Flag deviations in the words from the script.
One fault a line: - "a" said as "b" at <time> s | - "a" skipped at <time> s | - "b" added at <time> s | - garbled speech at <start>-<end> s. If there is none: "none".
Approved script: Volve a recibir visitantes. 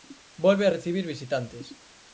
none